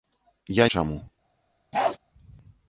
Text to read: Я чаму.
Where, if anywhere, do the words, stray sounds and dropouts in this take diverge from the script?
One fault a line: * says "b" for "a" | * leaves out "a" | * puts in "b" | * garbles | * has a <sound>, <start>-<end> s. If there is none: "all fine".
* has a bark, 1.7-2.0 s